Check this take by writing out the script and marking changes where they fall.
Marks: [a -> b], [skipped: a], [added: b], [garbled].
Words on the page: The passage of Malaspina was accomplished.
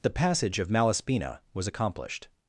The passage of Malaspina was accomplished.